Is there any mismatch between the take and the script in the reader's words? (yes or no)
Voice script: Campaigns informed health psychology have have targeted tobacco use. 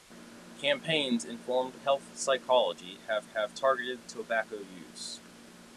no